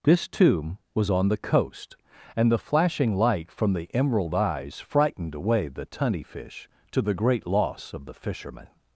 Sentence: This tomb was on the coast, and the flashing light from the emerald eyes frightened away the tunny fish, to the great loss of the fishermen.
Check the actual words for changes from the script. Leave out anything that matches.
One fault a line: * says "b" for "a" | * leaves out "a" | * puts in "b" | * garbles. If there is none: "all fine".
all fine